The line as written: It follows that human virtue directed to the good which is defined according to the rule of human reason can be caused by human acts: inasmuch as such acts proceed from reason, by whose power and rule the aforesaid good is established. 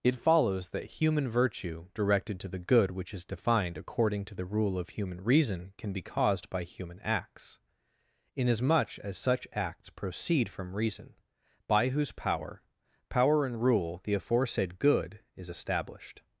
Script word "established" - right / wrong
right